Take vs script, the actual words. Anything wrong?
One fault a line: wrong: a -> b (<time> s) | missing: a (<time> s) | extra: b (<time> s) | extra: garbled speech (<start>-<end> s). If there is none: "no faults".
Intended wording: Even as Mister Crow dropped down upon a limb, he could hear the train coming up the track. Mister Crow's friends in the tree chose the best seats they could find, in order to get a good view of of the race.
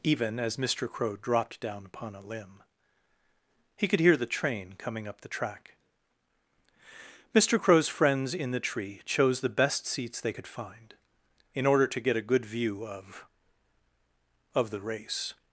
no faults